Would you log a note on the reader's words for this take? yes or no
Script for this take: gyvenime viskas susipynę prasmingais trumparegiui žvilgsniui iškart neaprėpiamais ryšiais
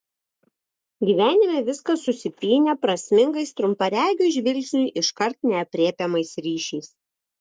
no